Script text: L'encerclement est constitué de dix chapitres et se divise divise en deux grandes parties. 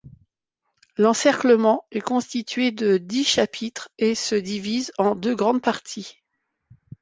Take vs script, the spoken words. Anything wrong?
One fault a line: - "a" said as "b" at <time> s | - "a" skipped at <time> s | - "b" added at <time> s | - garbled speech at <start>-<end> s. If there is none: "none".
- "divise" skipped at 4.9 s